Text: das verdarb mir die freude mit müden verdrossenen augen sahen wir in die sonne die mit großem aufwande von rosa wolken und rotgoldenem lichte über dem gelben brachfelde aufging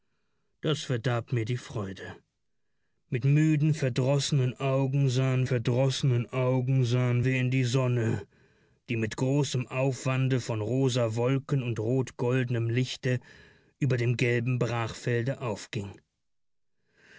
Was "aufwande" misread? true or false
false